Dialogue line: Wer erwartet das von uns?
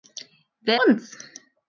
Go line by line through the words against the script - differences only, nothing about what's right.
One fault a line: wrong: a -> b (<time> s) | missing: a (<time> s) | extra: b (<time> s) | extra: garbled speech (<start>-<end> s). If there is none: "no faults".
missing: erwartet das von (0.8 s)